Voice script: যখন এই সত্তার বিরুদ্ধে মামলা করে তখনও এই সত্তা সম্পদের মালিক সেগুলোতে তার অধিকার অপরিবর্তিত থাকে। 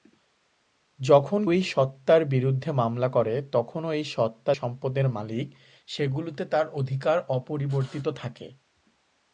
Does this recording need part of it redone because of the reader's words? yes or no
no